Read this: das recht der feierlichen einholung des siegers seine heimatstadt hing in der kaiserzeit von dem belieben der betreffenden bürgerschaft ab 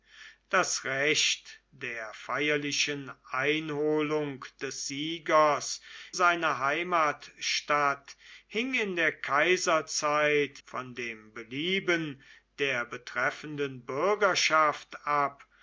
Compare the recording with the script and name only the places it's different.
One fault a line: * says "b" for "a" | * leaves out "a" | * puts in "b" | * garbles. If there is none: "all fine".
all fine